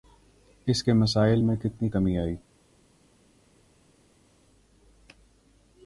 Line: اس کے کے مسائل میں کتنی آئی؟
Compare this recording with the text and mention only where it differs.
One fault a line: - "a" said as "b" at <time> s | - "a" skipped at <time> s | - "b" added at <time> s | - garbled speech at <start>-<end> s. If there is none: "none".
- "کے" skipped at 0.9 s
- "کمی" added at 1.9 s